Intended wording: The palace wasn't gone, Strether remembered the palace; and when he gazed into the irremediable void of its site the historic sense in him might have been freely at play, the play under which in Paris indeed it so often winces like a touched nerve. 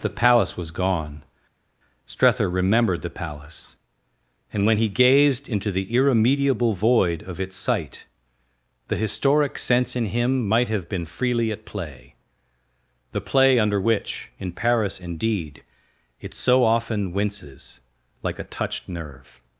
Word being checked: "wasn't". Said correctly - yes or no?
no